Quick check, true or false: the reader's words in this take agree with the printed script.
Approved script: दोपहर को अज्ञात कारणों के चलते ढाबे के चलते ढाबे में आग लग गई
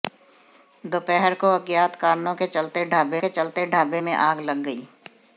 true